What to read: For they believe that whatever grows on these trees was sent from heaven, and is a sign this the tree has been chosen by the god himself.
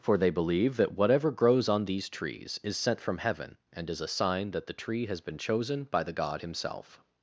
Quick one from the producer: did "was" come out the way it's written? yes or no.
no